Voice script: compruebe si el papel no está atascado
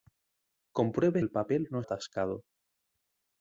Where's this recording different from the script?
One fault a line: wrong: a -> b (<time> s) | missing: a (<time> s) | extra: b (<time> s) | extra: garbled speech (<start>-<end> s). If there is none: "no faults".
missing: si (1.2 s)
missing: está (1.8 s)